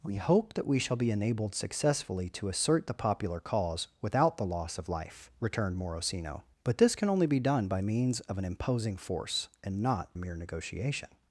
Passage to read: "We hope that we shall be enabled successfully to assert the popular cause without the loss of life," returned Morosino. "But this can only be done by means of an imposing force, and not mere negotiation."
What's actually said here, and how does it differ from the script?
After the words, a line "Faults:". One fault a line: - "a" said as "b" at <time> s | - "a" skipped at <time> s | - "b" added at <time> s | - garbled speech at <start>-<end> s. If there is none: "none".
"We hope that we shall be enabled successfully to assert the popular cause without the loss of life," returned Morosino. "But this can only be done by means of an imposing force, and not mere negotiation."
Faults:
none